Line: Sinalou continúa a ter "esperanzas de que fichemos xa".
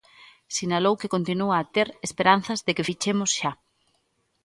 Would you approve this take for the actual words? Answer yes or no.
no